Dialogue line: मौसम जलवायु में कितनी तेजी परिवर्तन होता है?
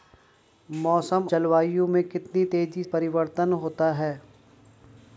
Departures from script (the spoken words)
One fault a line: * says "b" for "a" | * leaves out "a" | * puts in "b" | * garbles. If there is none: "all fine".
all fine